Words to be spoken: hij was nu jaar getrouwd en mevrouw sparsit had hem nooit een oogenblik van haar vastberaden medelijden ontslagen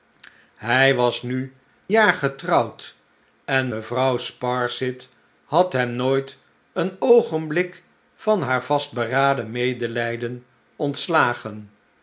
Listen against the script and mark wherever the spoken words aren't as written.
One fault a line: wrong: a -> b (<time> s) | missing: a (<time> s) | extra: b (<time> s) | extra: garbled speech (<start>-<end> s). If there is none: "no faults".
no faults